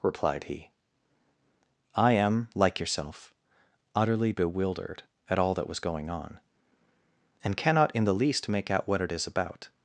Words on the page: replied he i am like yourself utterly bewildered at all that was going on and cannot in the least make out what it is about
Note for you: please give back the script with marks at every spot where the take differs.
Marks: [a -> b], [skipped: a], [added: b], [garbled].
replied he i am like yourself utterly bewildered at all that was going on and cannot in the least make out what it is about